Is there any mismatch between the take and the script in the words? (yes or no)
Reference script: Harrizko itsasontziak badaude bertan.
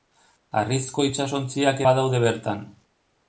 no